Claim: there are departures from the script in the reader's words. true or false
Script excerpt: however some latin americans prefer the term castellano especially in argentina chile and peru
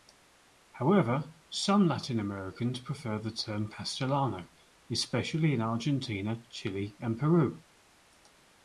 false